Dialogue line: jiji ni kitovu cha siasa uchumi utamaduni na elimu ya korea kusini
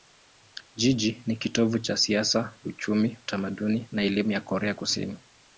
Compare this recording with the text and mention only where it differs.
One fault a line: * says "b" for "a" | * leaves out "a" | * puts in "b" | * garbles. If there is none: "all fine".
all fine